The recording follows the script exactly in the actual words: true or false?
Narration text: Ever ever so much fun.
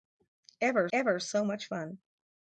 true